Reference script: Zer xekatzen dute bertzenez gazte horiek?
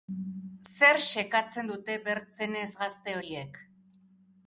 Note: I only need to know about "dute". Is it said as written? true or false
true